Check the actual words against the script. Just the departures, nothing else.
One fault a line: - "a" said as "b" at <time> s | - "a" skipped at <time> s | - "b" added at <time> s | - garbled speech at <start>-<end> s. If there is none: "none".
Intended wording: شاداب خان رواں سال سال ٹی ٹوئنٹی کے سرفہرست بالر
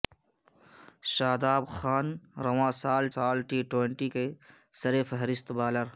none